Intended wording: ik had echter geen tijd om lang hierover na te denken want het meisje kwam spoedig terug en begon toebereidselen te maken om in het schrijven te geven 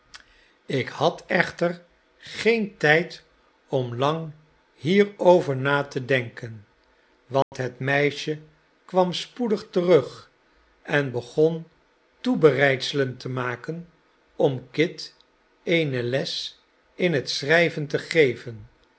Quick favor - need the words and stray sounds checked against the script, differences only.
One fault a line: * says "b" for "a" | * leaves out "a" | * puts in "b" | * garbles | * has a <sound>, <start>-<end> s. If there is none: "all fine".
* has a dropout, 7.4-7.5 s
* puts in "kit eene les"